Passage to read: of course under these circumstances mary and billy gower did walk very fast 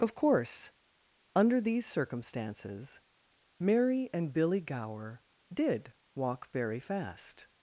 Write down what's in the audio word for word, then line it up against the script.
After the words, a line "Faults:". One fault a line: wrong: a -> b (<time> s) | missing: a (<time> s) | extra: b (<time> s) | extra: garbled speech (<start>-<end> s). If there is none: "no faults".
of course under these circumstances mary and billy gower did walk very fast
Faults:
no faults